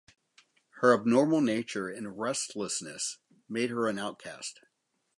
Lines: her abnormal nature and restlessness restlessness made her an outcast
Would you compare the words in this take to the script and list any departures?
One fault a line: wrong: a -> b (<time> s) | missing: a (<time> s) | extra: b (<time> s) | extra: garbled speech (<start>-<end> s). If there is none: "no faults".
missing: restlessness (3.2 s)